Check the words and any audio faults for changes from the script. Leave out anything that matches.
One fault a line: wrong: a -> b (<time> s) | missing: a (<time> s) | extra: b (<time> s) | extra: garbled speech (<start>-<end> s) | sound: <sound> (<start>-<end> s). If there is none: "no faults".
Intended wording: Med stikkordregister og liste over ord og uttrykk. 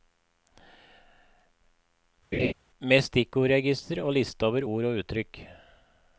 sound: laugh (2.3-2.5 s)